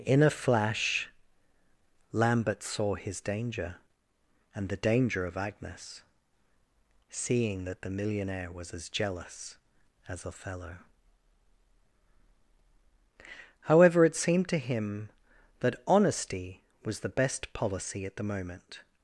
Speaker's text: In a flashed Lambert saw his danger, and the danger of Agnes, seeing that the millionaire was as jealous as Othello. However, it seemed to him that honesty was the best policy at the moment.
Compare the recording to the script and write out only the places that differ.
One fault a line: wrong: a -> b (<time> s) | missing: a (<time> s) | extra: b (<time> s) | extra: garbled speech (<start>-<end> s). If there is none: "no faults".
wrong: flashed -> flash (0.3 s)